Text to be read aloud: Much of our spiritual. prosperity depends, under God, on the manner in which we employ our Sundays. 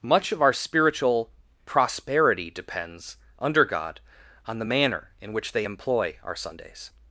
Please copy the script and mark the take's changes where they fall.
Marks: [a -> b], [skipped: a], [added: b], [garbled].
Much of our spiritual. prosperity depends, under God, on the manner in which [we -> they] employ our Sundays.